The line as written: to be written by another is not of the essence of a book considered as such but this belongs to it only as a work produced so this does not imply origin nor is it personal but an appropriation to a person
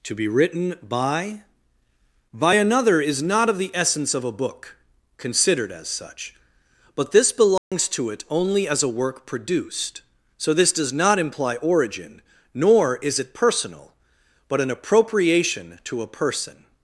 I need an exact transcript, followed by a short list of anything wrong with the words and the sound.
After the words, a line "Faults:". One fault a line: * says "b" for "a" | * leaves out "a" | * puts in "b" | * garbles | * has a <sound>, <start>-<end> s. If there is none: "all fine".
to be written by by another is not of the essence of a book considered as such but this belongs to it only as a work produced so this does not imply origin nor is it personal but an appropriation to a person
Faults:
* puts in "by"
* has a dropout, 7.6-7.7 s